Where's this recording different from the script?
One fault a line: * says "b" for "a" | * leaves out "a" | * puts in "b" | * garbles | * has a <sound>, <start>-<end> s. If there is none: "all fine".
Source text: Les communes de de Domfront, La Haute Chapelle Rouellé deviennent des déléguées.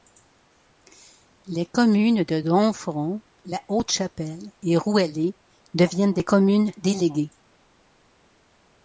* leaves out "de"
* puts in "et"
* puts in "communes"